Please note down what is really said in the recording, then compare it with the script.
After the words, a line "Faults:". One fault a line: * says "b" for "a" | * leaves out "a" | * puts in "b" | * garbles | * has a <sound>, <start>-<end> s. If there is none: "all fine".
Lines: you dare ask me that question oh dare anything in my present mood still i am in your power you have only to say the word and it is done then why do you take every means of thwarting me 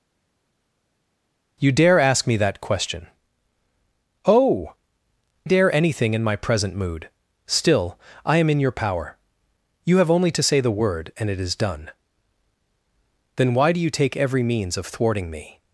you dare ask me that question oh dare anything in my present mood still i am in your power you have only to say the word and it is done then why do you take every means of thwarting me
Faults:
all fine